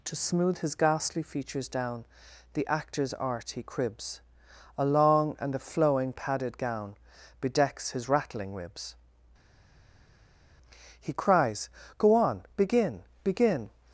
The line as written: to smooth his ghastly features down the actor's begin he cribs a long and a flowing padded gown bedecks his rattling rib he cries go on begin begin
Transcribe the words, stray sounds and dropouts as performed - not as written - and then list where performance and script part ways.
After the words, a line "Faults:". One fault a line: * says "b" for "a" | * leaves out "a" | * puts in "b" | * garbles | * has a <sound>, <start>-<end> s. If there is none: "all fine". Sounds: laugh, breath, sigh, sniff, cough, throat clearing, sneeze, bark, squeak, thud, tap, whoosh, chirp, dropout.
to smooth his ghastly features down the actor's art he cribs a long and a flowing padded gown bedecks his rattling ribs he cries go on begin begin
Faults:
* says "art" for "begin"
* says "ribs" for "rib"